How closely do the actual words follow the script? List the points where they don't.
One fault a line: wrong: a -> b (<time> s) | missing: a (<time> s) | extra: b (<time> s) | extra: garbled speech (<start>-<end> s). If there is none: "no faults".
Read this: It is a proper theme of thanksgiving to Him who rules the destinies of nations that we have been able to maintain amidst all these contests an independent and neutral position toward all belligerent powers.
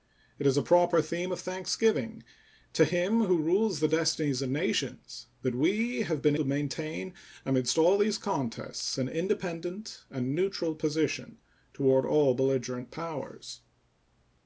missing: able (6.3 s)